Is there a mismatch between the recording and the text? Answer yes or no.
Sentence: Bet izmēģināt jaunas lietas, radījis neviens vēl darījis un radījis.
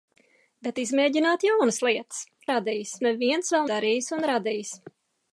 no